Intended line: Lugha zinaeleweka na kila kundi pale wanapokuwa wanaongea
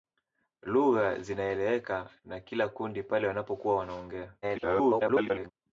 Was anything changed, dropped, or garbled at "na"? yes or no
no